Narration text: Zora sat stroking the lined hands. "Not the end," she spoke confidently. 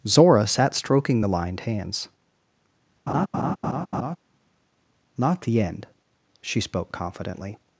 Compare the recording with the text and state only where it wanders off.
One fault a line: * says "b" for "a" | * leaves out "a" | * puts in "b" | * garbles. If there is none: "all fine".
all fine